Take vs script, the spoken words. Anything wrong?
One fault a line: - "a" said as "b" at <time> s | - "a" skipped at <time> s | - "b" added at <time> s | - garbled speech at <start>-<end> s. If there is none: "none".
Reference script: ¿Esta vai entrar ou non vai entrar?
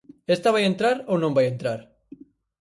none